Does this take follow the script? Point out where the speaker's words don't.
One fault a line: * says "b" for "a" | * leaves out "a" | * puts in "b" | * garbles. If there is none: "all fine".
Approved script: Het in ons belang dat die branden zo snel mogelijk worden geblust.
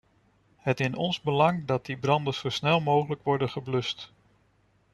all fine